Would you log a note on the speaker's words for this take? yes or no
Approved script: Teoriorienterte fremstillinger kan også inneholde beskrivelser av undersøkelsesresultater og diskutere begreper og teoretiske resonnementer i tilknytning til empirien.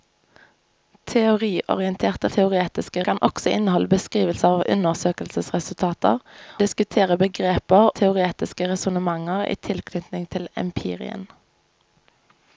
yes